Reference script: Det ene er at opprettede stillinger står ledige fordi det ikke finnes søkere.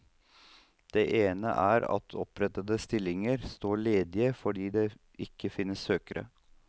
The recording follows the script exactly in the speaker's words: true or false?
true